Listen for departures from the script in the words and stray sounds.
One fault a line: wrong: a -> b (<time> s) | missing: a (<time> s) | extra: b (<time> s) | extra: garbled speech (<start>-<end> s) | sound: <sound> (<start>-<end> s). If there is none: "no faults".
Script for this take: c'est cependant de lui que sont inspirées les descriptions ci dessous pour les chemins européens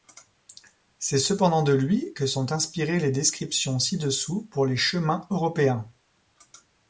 no faults